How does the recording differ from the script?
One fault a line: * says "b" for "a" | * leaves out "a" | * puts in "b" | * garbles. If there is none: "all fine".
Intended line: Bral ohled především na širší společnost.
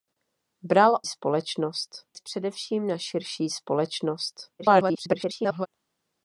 * says "společnost" for "ohled"
* garbles